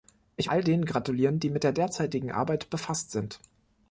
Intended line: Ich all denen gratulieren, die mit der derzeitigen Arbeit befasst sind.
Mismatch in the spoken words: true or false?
false